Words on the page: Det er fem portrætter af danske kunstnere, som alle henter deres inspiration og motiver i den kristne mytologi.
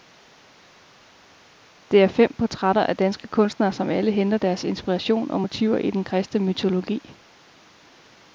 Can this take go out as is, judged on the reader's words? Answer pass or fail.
pass